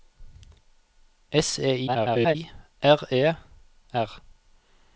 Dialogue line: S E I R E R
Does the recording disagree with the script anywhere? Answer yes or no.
yes